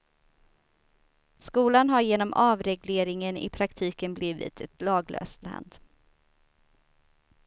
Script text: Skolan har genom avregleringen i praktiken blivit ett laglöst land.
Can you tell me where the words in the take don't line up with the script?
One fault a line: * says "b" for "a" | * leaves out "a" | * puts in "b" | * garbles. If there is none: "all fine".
all fine